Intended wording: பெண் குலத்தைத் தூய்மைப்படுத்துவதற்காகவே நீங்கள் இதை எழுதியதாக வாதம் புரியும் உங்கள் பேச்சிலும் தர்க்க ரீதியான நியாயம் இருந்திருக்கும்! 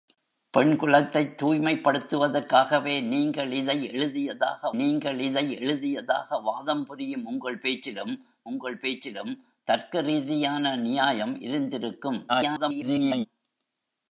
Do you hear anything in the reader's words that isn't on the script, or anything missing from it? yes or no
yes